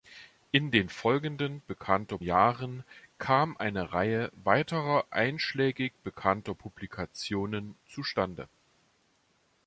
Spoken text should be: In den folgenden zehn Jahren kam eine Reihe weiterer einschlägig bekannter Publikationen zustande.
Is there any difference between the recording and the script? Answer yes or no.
yes